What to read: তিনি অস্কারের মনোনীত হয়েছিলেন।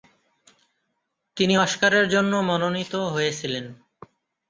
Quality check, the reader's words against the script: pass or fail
fail